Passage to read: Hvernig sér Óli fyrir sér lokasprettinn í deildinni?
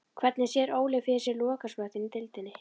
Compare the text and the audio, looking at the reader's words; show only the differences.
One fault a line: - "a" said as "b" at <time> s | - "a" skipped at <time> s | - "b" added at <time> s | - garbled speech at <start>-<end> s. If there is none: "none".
none